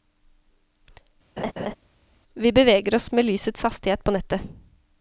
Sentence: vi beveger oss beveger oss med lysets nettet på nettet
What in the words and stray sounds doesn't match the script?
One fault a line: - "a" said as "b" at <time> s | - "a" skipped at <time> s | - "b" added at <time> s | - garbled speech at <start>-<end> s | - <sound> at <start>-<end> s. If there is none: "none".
- laugh at 1.4-1.7 s
- "beveger oss" skipped at 3.1 s
- "nettet" said as "hastighet" at 3.6 s